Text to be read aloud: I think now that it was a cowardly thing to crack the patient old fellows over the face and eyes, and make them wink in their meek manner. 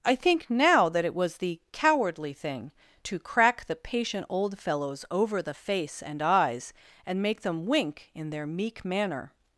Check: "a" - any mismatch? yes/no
yes